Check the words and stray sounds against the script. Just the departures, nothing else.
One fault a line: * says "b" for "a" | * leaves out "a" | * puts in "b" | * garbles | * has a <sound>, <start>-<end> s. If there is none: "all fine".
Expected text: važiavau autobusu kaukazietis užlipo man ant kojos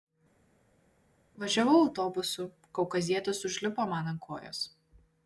all fine